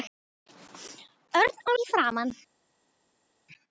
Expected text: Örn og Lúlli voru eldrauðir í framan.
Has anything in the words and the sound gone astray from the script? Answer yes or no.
yes